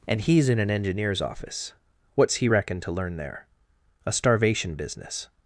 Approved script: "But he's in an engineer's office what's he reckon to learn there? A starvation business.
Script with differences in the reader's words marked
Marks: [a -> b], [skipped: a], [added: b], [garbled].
["But -> And] he's in an engineer's office what's he reckon to learn there? A starvation business.